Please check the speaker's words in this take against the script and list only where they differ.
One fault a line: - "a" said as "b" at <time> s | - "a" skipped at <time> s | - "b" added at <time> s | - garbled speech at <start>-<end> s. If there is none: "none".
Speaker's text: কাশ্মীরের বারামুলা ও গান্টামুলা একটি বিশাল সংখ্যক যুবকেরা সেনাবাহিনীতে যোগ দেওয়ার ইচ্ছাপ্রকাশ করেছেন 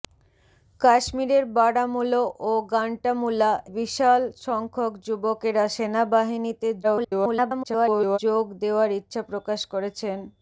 - "একটি" skipped at 3.5 s
- garbled speech at 6.8-8.2 s